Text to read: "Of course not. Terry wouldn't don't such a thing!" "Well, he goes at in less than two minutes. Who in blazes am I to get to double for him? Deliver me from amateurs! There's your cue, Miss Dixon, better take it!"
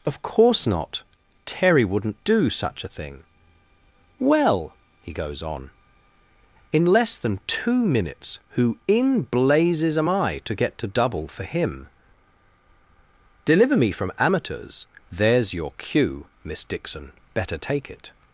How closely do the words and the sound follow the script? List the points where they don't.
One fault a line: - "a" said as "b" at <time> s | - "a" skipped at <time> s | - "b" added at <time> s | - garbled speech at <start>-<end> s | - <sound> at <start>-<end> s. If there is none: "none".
- "don't" said as "do" at 2.2 s
- "at" said as "on" at 5.4 s